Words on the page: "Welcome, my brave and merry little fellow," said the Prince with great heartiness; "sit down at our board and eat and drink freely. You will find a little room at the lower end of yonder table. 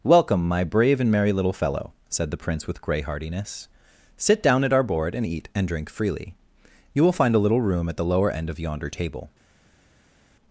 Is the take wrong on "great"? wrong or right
wrong